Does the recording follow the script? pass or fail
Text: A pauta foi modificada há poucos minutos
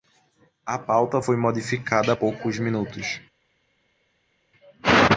pass